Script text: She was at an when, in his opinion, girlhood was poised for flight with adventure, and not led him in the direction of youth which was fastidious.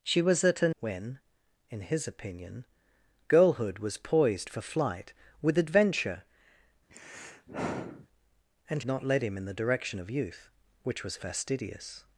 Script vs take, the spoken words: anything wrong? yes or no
no